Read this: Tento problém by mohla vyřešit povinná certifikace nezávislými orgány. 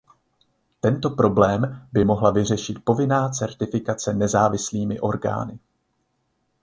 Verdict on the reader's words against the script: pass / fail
pass